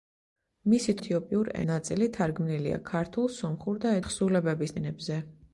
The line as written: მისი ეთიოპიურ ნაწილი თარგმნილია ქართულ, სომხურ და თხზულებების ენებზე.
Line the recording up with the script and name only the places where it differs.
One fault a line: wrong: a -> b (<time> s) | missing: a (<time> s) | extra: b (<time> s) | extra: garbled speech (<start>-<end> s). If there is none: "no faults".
no faults